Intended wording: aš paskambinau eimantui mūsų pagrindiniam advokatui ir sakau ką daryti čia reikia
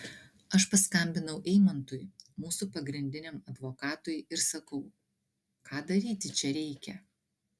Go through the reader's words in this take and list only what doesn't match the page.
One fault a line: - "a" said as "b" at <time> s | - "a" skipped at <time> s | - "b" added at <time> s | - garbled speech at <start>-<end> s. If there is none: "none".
none